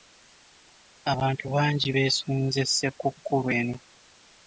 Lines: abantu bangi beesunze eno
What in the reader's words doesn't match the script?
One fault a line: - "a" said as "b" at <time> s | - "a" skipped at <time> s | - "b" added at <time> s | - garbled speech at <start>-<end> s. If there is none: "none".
- "ssekukkulu" added at 2.7 s